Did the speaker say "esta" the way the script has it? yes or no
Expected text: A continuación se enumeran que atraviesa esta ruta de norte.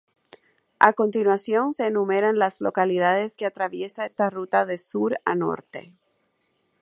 yes